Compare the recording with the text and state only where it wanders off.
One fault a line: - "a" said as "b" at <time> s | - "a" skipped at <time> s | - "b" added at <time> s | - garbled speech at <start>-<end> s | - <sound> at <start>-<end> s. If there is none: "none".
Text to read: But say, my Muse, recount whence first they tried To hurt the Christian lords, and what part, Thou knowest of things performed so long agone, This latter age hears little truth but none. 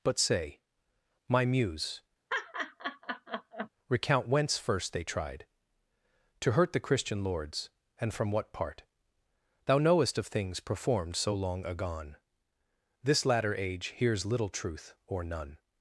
- laugh at 2.3-3.7 s
- "from" added at 8.1 s
- "but" said as "or" at 15.1 s